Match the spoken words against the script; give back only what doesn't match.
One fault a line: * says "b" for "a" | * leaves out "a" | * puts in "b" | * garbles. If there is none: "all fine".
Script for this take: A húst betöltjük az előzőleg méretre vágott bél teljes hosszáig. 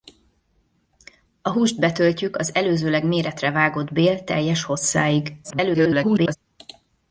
* garbles